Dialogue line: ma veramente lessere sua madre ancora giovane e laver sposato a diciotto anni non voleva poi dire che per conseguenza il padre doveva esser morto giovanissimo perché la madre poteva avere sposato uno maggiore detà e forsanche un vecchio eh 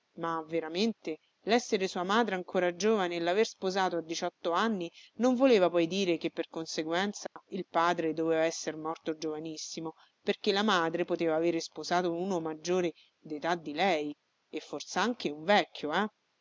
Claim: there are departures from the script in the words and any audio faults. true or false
true